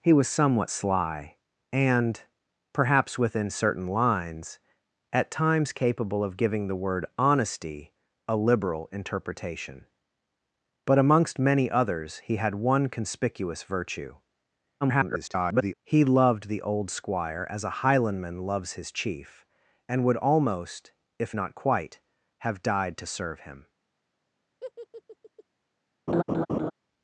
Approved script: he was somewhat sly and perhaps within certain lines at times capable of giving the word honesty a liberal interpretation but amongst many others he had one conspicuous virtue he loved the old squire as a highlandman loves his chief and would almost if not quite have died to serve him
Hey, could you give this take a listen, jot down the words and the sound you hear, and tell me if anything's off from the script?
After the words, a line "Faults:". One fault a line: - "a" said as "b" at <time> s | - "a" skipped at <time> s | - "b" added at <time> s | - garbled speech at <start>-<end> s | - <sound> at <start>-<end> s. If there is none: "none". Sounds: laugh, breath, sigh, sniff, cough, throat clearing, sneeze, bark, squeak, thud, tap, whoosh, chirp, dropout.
he was somewhat sly and perhaps within certain lines at times capable of giving the word honesty a liberal interpretation but amongst many others he had one conspicuous virtue [garbled] he loved the old squire as a highlandman loves his chief and would almost if not quite have died to serve him
Faults:
- garbled speech at 14.8-15.7 s
- laugh at 24.6-25.4 s
- laugh at 26.1-26.7 s